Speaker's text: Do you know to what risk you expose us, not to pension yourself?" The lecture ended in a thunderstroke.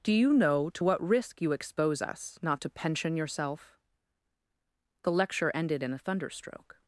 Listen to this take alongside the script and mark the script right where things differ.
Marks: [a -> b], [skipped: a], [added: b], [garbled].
Do you know to what risk you expose us, not to pension yourself?" The lecture ended in a thunderstroke.